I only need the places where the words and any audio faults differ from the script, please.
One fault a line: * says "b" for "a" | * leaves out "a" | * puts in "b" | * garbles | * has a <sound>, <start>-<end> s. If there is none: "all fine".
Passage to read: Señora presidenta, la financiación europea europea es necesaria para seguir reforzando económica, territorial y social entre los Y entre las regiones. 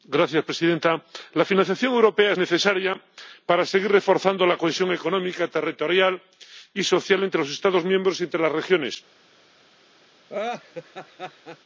* leaves out "europea"
* puts in "la cohesión"
* puts in "Estados miembros"
* has a laugh, 10.3-11.6 s